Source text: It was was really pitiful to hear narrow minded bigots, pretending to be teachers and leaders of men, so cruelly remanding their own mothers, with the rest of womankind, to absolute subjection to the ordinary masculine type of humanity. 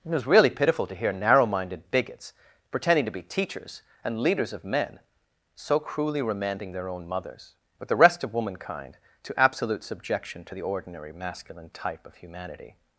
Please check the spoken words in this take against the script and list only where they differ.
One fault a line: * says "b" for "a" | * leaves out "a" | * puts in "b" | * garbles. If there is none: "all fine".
* leaves out "was"